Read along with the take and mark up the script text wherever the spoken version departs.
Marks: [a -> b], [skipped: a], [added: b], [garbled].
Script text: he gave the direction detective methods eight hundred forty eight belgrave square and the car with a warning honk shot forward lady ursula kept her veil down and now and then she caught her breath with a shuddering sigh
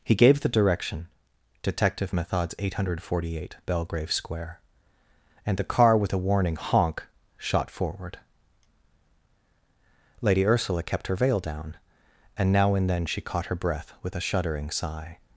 he gave the direction detective methods eight hundred forty eight belgrave square and the car with a warning honk shot forward lady ursula kept her veil down and now and then she caught her breath with a shuddering sigh